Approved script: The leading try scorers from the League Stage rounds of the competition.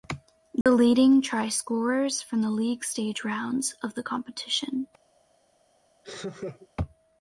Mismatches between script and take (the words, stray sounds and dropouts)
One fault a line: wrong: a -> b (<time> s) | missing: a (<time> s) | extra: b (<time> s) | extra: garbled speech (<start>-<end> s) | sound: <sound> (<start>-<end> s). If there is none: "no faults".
sound: dropout (0.6-0.7 s)
sound: laugh (6.0-6.7 s)